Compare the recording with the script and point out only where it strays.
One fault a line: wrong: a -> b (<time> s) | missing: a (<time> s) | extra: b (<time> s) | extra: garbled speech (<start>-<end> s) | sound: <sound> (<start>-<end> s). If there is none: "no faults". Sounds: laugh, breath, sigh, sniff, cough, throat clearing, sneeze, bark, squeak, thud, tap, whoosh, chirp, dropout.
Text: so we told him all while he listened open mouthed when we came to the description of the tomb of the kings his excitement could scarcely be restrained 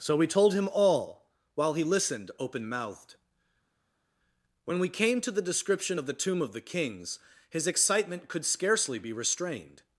no faults